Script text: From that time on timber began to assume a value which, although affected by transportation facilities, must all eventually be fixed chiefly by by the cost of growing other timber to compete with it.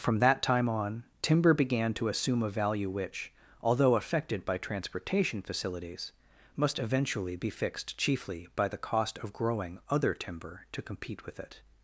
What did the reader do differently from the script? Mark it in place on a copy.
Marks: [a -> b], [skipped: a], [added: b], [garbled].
From that time on timber began to assume a value which, although affected by transportation facilities, must [skipped: all] eventually be fixed chiefly by [skipped: by] the cost of growing other timber to compete with it.